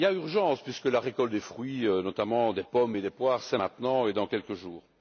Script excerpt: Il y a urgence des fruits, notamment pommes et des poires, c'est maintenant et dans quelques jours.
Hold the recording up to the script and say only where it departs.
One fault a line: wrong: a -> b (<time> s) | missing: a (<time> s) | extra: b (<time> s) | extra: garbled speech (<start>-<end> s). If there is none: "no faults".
extra: puisque la récolte (0.6 s)
extra: des (2.5 s)